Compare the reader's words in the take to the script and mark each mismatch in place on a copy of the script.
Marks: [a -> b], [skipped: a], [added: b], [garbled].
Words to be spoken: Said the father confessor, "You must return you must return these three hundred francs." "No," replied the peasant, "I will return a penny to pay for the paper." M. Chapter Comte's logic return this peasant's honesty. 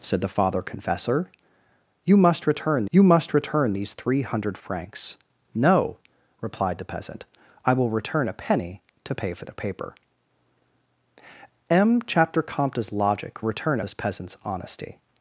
Said the father confessor, "You must return you must return these three hundred francs." "No," replied the peasant, "I will return a penny to pay for the paper." M. Chapter Comte's logic return this peasant's honesty.